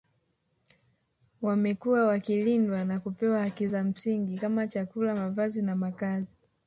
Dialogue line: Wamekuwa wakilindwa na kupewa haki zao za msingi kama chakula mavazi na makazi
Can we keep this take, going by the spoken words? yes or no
no